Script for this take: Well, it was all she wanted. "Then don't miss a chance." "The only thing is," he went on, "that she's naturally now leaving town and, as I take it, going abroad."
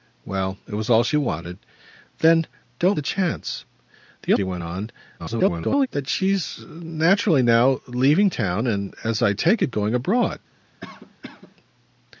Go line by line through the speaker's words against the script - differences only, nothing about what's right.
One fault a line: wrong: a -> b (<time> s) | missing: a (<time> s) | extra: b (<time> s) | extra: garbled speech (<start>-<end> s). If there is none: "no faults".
missing: miss (3.0 s)
missing: only thing is (4.3 s)
extra: garbled speech (5.2-5.9 s)